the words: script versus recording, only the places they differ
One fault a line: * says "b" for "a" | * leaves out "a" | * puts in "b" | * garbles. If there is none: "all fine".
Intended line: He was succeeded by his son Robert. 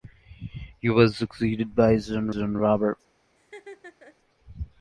* puts in "son"